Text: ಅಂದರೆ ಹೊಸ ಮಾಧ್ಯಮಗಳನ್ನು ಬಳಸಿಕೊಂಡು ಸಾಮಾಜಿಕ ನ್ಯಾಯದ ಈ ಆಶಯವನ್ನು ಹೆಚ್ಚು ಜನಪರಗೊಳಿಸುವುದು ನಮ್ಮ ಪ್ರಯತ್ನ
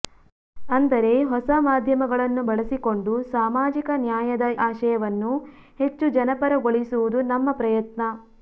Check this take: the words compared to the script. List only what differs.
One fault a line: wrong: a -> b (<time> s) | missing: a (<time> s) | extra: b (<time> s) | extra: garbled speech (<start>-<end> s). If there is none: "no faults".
missing: ಈ (4.5 s)